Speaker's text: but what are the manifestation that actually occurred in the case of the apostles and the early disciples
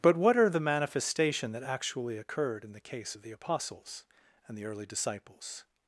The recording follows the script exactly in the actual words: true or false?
true